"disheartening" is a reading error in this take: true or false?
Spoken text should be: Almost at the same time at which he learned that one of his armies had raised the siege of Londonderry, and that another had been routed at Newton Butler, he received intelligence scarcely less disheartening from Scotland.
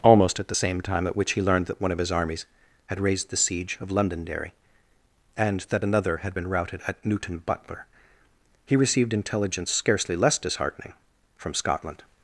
false